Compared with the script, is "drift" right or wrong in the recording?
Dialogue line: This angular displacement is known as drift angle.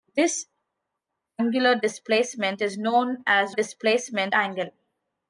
wrong